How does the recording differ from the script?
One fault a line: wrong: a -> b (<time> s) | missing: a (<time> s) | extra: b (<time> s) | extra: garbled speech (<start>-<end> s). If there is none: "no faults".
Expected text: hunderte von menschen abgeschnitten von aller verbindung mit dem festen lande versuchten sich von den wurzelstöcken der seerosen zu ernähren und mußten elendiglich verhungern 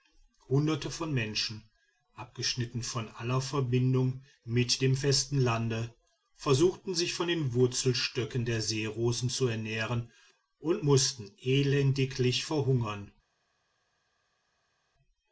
no faults